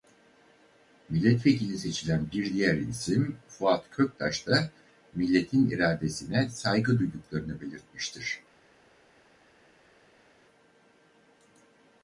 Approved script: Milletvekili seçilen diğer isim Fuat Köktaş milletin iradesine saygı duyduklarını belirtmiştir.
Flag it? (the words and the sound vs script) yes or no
yes